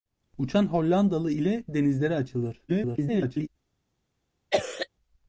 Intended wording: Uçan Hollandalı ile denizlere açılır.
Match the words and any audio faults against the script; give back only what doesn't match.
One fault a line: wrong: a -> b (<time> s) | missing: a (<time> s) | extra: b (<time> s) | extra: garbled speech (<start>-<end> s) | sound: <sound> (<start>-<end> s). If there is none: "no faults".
extra: garbled speech (2.7-3.5 s)
sound: cough (4.5-4.9 s)